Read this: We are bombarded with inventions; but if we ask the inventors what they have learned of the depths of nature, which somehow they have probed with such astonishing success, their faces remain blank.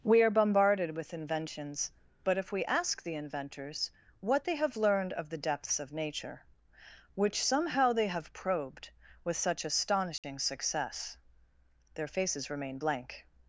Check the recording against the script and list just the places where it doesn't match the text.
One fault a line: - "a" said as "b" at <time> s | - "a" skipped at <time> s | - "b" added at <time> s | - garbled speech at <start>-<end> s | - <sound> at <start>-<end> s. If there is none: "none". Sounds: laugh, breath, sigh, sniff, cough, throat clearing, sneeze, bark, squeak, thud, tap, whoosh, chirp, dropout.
- dropout at 10.2-10.2 s